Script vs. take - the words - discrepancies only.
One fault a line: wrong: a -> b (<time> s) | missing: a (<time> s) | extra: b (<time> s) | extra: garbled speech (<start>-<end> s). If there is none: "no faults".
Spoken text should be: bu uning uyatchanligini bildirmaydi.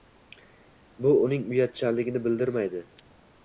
no faults